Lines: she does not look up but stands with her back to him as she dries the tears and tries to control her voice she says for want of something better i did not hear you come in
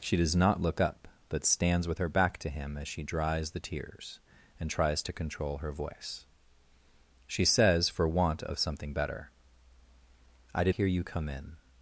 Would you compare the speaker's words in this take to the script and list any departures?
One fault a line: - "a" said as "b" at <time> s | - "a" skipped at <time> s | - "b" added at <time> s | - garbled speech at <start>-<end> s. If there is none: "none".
- "not" skipped at 10.8 s